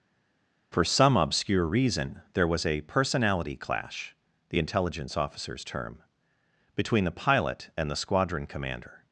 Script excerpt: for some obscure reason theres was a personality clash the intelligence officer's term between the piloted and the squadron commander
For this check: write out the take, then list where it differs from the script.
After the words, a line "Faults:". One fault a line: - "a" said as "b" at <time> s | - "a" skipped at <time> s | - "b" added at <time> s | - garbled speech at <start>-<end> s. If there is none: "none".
for some obscure reason there was a personality clash the intelligence officer's term between the pilot and the squadron commander
Faults:
- "theres" said as "there" at 2.3 s
- "piloted" said as "pilot" at 7.1 s